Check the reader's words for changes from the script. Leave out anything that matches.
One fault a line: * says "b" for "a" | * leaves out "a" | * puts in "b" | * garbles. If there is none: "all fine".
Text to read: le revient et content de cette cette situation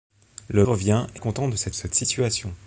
all fine